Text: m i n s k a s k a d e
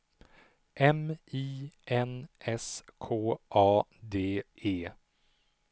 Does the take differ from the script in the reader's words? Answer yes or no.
yes